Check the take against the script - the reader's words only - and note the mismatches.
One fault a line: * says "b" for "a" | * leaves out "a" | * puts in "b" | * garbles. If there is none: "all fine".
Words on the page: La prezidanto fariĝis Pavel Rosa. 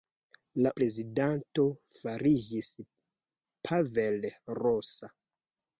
all fine